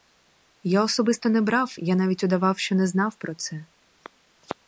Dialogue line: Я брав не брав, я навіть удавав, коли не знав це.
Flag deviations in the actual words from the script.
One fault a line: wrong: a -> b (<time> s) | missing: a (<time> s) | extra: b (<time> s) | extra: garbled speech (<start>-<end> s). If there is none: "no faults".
wrong: брав -> особисто (0.8 s)
wrong: коли -> що (2.6 s)
extra: про (3.1 s)